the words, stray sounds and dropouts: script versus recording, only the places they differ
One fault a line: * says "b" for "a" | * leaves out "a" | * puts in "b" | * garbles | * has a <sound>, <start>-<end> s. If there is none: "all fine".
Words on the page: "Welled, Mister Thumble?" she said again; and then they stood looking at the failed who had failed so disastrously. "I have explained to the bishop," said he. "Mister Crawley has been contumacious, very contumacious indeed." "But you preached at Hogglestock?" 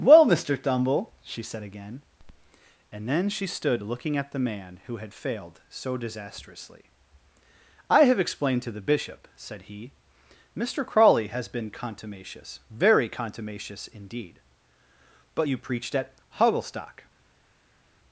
* says "Well" for "Welled"
* says "she" for "they"
* says "man" for "failed"